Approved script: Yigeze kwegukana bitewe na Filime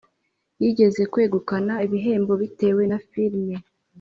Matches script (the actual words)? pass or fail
fail